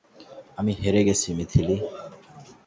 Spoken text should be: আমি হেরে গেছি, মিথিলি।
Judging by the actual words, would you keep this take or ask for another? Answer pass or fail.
pass